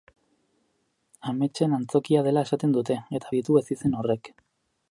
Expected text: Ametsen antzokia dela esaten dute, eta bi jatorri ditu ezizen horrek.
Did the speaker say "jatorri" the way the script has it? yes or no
no